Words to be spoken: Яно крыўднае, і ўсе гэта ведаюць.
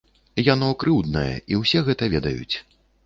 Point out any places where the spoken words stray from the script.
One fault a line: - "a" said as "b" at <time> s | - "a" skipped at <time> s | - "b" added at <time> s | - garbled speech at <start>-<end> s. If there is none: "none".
none